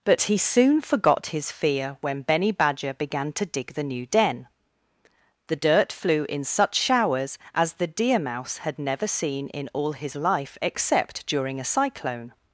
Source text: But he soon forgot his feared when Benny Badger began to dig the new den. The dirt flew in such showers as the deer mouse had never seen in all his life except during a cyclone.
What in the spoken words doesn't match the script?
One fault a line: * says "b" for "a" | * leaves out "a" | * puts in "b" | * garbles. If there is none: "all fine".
* says "fear" for "feared"